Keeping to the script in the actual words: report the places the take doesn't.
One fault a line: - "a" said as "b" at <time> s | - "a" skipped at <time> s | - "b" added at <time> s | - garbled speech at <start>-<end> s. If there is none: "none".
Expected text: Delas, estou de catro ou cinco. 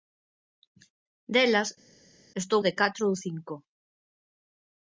none